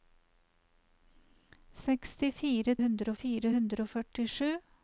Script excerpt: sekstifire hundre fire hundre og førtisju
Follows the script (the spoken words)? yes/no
yes